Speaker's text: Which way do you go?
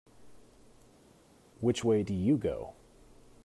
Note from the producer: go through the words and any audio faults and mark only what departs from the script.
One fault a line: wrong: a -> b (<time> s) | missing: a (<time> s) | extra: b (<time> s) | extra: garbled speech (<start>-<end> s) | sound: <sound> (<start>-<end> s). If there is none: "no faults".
no faults